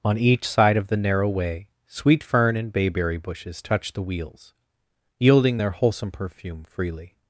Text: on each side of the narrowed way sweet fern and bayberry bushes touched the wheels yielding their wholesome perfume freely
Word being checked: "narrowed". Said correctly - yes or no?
no